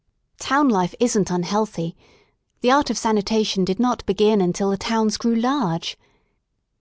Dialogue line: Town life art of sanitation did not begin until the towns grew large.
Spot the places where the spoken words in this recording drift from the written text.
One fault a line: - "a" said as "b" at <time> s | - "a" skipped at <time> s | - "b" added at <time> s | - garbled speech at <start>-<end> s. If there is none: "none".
- "isn't unhealthy the" added at 1.0 s